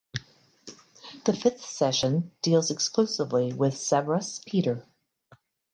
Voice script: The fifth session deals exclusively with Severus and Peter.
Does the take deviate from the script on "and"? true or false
true